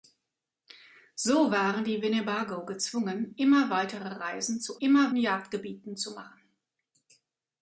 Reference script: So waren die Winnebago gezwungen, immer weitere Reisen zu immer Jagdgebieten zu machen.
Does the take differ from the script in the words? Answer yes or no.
no